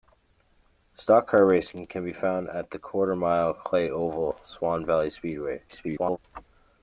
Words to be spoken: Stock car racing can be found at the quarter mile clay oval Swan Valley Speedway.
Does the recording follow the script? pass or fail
fail